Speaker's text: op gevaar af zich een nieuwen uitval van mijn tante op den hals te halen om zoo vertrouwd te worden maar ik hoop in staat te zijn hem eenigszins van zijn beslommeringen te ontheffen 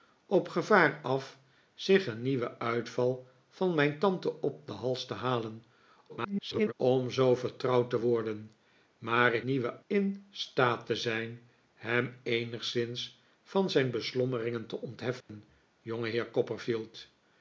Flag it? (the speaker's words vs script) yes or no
yes